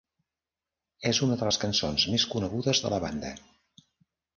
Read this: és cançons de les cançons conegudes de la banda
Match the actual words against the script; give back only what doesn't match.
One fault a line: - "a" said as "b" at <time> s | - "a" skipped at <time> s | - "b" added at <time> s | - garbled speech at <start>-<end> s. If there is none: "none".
- "cançons" said as "una" at 1.3 s
- "més" added at 2.2 s